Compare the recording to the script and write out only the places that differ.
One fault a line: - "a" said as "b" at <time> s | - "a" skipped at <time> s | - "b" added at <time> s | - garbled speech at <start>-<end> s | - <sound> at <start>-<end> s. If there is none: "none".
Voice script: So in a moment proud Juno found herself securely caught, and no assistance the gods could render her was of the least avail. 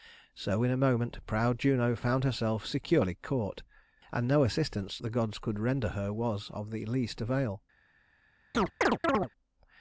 - chirp at 8.5-9.3 s